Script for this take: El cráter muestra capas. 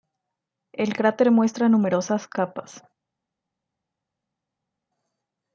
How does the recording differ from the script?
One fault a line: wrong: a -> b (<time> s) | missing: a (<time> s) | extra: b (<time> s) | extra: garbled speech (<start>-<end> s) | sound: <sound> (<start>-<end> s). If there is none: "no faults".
extra: numerosas (1.7 s)